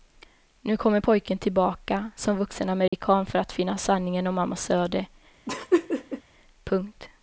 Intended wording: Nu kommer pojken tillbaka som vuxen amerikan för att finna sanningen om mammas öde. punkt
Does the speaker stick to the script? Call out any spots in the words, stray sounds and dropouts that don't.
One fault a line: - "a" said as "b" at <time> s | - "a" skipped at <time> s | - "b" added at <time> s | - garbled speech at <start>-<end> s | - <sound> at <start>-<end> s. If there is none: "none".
- dropout at 2.9-2.9 s
- laugh at 5.5-6.2 s